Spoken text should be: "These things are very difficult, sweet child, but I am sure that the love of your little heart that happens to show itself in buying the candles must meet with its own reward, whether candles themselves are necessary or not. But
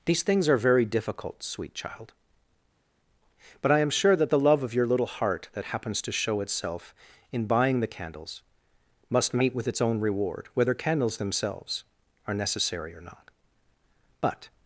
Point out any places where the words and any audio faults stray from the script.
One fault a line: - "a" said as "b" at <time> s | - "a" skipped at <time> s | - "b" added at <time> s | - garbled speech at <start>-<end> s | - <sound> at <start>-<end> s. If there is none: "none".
none